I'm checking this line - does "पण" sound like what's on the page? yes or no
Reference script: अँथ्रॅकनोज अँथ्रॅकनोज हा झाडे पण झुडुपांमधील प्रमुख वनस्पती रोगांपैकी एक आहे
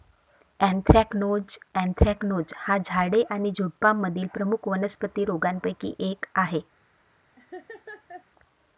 no